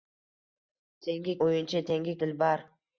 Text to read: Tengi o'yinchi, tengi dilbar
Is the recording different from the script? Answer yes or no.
no